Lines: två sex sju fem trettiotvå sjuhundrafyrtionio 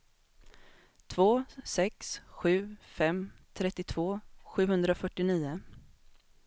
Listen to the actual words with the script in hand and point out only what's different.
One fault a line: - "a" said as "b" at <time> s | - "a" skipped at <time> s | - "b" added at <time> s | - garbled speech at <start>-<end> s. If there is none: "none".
none